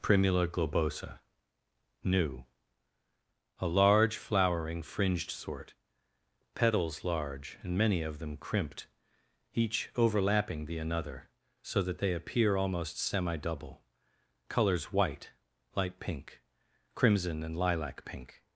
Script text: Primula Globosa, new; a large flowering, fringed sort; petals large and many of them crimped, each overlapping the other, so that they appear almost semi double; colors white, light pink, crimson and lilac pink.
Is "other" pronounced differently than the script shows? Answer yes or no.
yes